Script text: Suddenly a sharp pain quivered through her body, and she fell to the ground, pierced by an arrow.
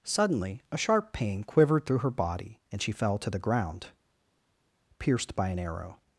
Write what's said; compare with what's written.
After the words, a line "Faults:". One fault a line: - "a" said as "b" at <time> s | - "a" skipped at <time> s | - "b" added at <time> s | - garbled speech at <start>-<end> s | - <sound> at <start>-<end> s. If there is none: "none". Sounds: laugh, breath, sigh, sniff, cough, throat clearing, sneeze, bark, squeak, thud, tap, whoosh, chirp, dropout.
Suddenly a sharp pain quivered through her body, and she fell to the ground, pierced by an arrow.
Faults:
none